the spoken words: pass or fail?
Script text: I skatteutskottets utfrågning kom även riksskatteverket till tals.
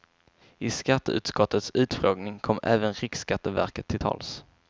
pass